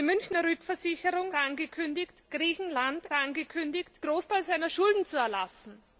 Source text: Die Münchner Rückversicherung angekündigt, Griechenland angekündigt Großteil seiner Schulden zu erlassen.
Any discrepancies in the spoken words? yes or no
no